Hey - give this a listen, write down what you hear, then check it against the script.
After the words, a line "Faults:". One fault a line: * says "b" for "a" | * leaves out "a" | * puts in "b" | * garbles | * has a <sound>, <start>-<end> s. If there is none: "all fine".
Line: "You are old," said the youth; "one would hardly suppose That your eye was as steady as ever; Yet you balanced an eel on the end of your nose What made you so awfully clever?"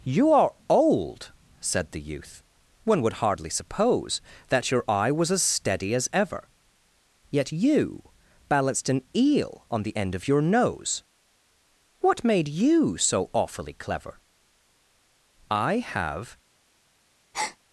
"You are old," said the youth; "one would hardly suppose That your eye was as steady as ever; Yet you balanced an eel on the end of your nose What made you so awfully clever?" "I have
Faults:
* puts in "I have"
* has a breath, 17.3-17.6 s